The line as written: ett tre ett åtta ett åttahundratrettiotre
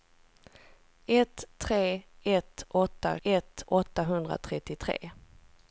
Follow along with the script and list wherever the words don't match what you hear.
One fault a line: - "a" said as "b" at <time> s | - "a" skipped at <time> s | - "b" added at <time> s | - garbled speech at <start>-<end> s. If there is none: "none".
none